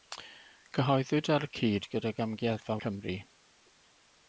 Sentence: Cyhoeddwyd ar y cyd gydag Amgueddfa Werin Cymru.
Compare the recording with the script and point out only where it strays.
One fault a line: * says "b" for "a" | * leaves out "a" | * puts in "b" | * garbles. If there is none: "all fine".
* leaves out "Werin"